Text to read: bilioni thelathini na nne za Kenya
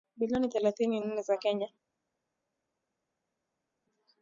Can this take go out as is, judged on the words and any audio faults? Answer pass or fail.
fail